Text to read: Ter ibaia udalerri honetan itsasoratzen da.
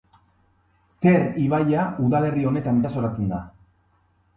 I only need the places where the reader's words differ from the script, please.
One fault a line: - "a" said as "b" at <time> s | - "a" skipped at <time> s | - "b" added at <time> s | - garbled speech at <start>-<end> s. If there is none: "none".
none